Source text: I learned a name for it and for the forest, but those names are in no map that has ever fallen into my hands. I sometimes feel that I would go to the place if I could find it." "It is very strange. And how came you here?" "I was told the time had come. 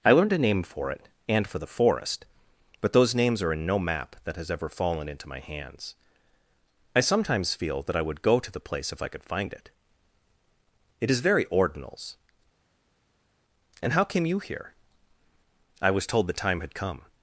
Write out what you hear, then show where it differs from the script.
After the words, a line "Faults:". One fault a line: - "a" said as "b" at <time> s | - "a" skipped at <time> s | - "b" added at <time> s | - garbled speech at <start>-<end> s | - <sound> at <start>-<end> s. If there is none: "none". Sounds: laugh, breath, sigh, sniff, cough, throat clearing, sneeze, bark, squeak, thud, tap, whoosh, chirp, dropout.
I learned a name for it and for the forest, but those names are in no map that has ever fallen into my hands. I sometimes feel that I would go to the place if I could find it." "It is very ordinals. And how came you here?" "I was told the time had come.
Faults:
- "strange" said as "ordinals" at 11.4 s